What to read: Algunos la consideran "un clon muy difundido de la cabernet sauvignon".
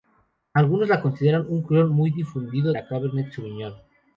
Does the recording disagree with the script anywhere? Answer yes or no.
yes